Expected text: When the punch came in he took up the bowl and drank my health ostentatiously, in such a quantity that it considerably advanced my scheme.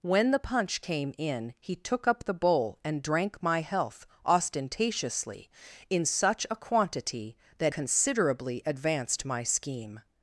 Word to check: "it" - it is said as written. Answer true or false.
false